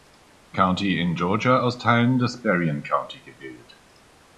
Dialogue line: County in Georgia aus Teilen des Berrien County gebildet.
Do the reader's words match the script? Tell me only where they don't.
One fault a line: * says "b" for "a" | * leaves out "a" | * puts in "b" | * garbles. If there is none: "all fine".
all fine